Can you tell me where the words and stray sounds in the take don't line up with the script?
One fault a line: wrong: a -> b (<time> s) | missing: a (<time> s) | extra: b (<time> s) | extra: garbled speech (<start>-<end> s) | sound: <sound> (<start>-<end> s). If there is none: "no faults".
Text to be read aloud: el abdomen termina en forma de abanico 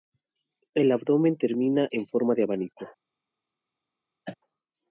sound: cough (4.2-4.4 s)